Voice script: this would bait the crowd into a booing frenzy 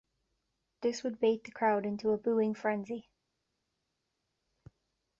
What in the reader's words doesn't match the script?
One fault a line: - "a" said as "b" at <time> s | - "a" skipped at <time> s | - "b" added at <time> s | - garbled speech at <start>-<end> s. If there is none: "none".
none